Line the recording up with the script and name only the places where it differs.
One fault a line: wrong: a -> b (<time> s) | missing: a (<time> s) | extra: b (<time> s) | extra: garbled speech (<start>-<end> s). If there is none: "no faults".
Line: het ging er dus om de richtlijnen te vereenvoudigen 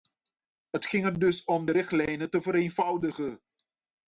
no faults